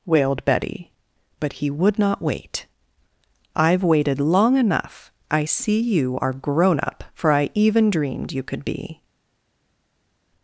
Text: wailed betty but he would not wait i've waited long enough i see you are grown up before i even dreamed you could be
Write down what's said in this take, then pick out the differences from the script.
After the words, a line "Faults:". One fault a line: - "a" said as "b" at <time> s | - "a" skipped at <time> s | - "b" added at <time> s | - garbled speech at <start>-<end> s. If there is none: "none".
wailed betty but he would not wait i've waited long enough i see you are grown up for i even dreamed you could be
Faults:
- "before" said as "for" at 7.1 s